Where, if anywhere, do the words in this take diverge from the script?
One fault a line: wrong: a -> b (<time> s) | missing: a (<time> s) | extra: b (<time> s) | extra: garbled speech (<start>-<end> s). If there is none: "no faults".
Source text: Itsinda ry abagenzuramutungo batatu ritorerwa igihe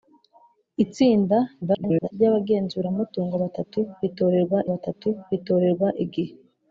extra: garbled speech (1.6-2.1 s)
extra: batatu ritorerwa (4.7 s)